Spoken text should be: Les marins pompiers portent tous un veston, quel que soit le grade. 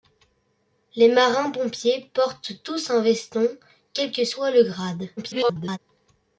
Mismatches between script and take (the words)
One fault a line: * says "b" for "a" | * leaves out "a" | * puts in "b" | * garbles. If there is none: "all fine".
* garbles